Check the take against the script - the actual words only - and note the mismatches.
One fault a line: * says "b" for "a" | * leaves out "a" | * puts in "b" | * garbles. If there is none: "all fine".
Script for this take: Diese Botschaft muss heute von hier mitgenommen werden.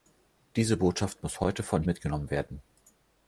* leaves out "hier"